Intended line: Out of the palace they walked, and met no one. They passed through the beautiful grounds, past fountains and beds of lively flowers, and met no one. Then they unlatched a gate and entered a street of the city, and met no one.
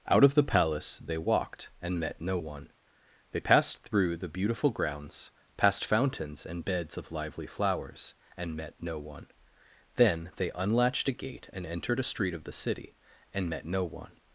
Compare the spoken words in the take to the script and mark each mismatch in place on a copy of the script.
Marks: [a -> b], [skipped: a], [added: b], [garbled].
Out of the palace they walked, and met no one. They passed through the beautiful grounds, past fountains and beds of lively flowers, and met no one. Then they unlatched a gate and entered a street of the city, and met no one.